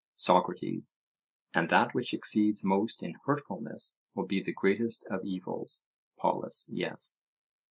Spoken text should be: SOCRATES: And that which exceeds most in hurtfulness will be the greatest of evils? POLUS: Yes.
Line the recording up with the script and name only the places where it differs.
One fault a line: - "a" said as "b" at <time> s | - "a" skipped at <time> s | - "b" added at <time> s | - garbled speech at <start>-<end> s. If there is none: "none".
none